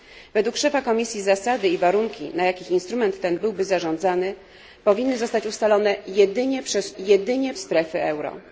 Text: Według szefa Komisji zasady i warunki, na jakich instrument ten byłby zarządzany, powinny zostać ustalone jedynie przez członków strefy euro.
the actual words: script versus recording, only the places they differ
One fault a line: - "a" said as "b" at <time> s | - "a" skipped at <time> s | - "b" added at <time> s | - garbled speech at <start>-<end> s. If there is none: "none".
- "członków" said as "jedynie" at 7.0 s